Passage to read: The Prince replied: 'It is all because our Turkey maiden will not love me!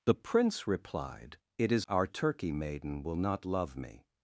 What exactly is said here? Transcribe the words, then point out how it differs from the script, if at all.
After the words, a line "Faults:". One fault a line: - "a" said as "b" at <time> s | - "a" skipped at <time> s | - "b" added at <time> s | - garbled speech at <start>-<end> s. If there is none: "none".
The Prince replied: 'It is our Turkey maiden will not love me!
Faults:
- "all because" skipped at 1.9 s